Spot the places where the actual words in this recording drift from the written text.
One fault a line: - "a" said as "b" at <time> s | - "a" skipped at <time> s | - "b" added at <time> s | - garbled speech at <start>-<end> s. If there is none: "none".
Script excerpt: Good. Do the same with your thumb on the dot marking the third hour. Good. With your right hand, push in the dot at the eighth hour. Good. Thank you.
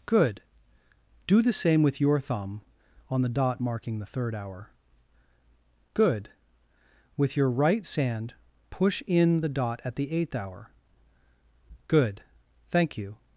- "hand" said as "sand" at 7.8 s